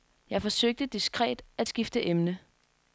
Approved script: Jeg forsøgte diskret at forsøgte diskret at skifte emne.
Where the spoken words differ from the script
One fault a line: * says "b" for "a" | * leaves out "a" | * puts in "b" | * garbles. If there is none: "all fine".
* leaves out "forsøgte diskret at"